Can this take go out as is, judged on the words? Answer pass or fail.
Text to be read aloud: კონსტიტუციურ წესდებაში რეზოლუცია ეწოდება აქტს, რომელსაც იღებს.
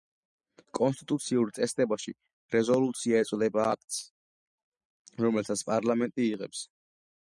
fail